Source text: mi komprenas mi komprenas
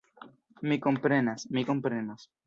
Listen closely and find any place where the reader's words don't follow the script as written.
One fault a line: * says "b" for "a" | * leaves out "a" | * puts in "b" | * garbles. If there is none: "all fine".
all fine